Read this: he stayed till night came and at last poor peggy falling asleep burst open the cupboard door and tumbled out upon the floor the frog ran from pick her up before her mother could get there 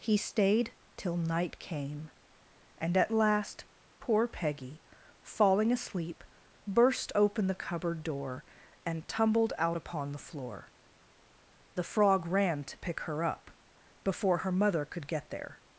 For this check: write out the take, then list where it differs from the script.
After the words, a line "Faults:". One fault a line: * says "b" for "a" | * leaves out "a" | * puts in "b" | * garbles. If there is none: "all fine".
he stayed till night came and at last poor peggy falling asleep burst open the cupboard door and tumbled out upon the floor the frog ran to pick her up before her mother could get there
Faults:
* says "to" for "from"